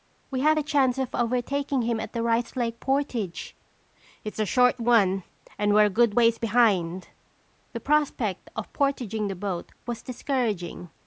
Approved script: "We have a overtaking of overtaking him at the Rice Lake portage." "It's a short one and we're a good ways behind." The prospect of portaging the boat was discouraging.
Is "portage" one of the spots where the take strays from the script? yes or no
no